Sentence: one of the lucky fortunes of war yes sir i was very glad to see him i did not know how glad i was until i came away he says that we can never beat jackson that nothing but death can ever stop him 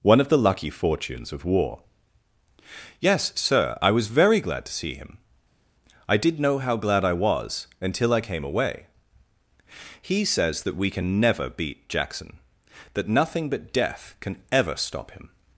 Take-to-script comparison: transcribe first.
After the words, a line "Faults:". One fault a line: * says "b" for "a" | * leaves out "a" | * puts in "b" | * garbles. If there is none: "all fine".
one of the lucky fortunes of war yes sir i was very glad to see him i did know how glad i was until i came away he says that we can never beat jackson that nothing but death can ever stop him
Faults:
* leaves out "not"